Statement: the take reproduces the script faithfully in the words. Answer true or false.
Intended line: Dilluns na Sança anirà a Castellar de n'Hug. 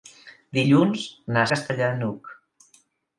false